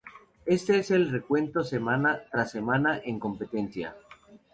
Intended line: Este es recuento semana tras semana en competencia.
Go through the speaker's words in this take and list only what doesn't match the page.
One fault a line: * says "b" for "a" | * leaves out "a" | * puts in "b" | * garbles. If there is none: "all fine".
* puts in "el"